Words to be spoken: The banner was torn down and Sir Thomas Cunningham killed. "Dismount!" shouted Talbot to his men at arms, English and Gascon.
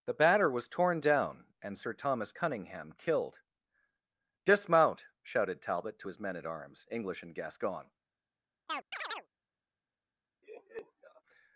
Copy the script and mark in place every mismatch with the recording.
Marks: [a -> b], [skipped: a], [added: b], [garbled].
The [banner -> batter] was torn down and Sir Thomas Cunningham killed. "Dismount!" shouted Talbot to his men at arms, English and Gascon.